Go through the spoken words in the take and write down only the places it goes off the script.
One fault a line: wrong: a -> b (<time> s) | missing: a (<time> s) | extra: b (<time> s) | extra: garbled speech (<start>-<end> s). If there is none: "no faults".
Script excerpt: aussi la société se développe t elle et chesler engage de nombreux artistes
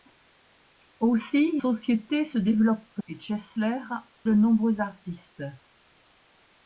missing: la (1.6 s)
missing: elle (3.0 s)
missing: engage (3.8 s)